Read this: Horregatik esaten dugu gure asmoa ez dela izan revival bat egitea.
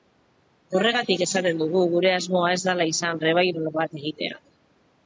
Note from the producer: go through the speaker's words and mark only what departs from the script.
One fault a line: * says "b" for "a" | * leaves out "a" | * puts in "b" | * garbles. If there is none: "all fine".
all fine